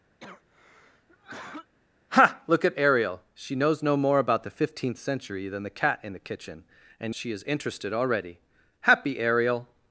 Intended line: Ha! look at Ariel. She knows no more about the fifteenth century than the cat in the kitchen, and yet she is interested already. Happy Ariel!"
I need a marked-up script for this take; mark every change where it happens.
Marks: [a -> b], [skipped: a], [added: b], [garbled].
Ha! look at Ariel. She knows no more about the fifteenth century than the cat in the kitchen, and [skipped: yet] she is interested already. Happy Ariel!"